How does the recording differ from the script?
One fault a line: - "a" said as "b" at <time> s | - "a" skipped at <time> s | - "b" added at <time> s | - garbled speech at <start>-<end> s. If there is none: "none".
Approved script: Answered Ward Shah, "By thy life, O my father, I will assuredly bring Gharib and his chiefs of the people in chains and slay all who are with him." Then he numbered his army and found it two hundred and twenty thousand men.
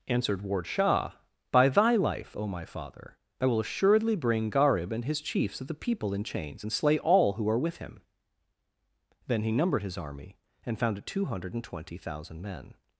none